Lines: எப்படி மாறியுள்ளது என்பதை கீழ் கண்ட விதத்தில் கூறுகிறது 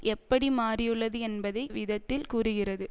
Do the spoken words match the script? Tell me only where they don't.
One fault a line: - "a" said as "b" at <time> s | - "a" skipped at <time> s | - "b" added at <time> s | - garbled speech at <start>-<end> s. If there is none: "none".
- "கீழ் கண்ட" skipped at 1.6 s